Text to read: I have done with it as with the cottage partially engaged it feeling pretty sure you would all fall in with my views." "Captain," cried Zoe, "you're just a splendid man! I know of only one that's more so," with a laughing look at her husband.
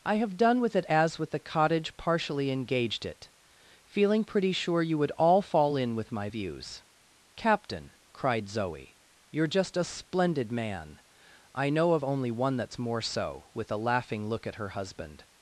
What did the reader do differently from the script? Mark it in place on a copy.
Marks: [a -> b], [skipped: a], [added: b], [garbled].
I have done with it as with the cottage partially engaged it feeling pretty sure you would all fall in with my views." "Captain," cried Zoe, "you're just a splendid man! I know of only one that's more so," with a laughing look at her husband.